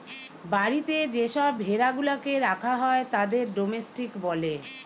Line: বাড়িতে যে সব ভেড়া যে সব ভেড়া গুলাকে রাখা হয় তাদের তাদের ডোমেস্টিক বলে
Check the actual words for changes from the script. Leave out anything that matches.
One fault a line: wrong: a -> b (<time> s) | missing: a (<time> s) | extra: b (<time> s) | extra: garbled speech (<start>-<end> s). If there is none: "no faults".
missing: যে সব ভেড়া (1.9 s)
missing: তাদের (3.4 s)